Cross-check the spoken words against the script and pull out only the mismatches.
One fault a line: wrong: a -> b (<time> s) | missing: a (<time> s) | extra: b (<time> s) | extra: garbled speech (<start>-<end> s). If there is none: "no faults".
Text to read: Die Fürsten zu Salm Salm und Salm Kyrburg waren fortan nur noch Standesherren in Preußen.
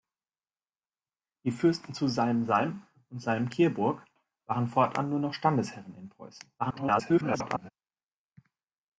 extra: garbled speech (6.6-7.7 s)